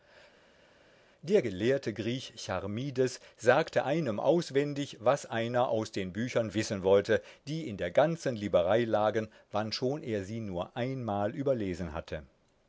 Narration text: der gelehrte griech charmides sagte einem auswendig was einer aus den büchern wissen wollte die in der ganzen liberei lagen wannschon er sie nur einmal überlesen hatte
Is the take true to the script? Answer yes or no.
yes